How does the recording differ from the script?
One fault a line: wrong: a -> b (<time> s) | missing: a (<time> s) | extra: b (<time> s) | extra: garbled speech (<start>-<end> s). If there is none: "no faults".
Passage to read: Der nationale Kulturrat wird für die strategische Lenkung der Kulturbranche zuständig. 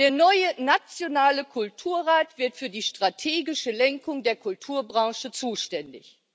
extra: neue (0.1 s)